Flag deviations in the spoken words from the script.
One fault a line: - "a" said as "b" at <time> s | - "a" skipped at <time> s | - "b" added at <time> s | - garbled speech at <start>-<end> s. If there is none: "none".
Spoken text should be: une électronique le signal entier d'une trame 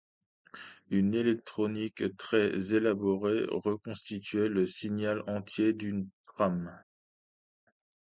- "très élaborée reconstituait" added at 2.2 s